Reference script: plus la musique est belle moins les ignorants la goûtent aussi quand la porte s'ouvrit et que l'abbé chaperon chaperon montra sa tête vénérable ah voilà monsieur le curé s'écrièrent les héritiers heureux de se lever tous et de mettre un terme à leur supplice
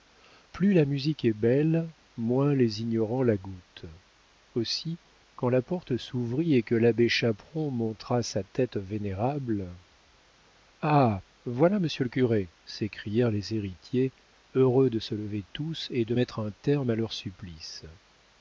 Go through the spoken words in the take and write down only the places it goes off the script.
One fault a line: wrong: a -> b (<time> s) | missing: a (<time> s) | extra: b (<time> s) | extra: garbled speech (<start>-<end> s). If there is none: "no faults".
missing: chaperon (7.7 s)